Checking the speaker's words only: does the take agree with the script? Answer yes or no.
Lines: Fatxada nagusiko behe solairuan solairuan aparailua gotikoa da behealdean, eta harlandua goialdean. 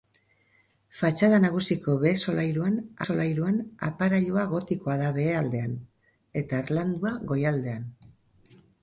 yes